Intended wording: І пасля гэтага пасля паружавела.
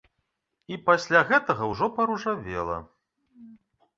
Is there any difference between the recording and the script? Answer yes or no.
yes